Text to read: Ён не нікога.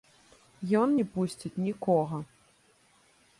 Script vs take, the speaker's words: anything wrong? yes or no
yes